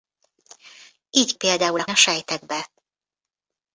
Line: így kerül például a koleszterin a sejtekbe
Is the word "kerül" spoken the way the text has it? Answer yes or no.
no